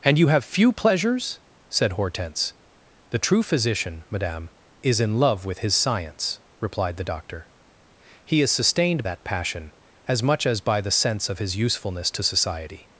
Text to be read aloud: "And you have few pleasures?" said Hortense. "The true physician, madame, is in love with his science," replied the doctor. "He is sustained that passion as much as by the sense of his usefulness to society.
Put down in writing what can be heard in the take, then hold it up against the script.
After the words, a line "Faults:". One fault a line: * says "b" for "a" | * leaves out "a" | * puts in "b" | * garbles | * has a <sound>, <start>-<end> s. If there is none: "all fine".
"And you have few pleasures?" said Hortense. "The true physician, madame, is in love with his science," replied the doctor. "He is sustained that passion as much as by the sense of his usefulness to society.
Faults:
all fine